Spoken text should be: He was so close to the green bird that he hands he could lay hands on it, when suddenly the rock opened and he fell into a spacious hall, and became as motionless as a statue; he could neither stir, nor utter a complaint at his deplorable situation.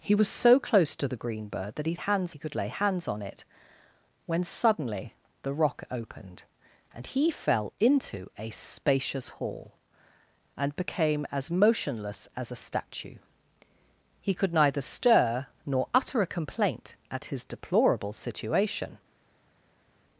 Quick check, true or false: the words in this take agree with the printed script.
true